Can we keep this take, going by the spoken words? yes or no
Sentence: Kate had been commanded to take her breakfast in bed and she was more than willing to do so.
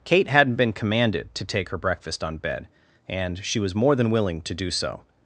no